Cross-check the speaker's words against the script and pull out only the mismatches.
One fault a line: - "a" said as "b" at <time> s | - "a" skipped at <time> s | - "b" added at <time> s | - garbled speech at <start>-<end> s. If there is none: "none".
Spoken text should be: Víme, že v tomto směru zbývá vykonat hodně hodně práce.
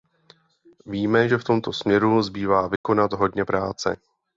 - "hodně" skipped at 3.4 s